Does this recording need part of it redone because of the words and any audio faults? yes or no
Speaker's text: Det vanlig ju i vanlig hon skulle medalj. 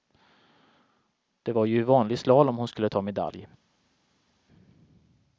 yes